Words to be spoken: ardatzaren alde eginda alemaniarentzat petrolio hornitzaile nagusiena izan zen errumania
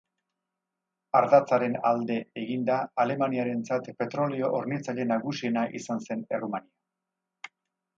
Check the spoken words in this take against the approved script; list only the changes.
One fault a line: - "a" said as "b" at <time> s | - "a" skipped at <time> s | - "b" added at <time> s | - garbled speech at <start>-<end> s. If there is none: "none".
none